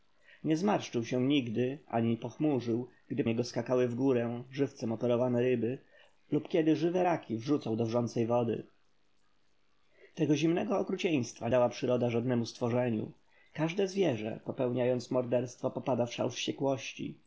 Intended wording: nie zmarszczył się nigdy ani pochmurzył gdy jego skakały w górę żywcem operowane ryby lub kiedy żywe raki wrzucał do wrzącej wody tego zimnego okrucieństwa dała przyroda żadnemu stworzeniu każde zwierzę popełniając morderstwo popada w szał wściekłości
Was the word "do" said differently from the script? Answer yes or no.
no